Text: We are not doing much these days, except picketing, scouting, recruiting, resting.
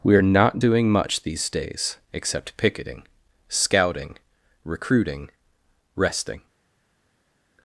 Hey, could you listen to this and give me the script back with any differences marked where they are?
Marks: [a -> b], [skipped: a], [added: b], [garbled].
We are not doing much these days, except picketing, scouting, recruiting, resting.